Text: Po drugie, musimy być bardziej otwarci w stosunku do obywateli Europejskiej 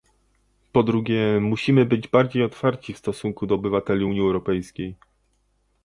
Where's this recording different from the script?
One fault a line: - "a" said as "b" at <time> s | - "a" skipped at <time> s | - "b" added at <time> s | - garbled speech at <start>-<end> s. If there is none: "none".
- "Unii" added at 4.0 s